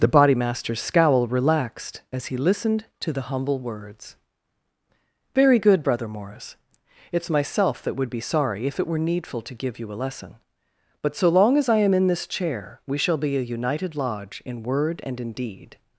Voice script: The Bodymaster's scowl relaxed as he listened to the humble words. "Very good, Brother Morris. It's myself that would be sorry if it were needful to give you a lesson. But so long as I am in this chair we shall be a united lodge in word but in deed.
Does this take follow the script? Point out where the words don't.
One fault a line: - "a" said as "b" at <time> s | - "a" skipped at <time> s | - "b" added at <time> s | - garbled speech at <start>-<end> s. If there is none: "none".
- "but" said as "and" at 15.0 s